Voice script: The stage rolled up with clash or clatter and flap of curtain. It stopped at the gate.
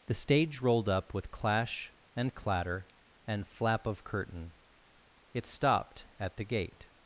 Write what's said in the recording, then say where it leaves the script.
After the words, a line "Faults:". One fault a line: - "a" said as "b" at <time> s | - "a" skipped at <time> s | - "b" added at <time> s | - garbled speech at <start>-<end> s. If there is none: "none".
The stage rolled up with clash and clatter and flap of curtain. It stopped at the gate.
Faults:
- "or" said as "and" at 2.1 s